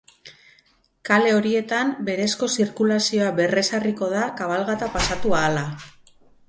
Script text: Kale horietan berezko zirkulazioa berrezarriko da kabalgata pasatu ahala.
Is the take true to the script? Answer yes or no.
yes